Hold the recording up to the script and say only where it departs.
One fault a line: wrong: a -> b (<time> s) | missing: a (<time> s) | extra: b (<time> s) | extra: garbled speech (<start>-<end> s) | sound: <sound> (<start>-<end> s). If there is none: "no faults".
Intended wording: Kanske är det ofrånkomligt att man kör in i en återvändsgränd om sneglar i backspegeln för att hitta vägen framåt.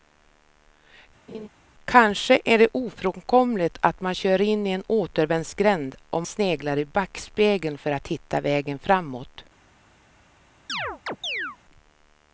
sound: laugh (1.3-1.5 s)
sound: chirp (10.7-11.6 s)